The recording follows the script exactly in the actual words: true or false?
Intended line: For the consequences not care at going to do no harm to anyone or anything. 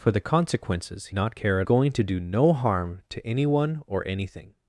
true